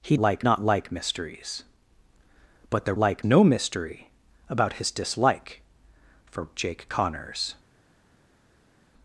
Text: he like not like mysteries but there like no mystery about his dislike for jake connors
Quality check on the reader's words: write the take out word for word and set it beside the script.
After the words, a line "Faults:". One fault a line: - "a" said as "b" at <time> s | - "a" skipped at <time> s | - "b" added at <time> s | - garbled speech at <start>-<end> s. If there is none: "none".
he like not like mysteries but there like no mystery about his dislike for jake connors
Faults:
none